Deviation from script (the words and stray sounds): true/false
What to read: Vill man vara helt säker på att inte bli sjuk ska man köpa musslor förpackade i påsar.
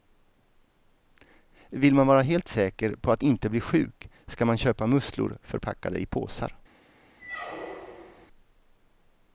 true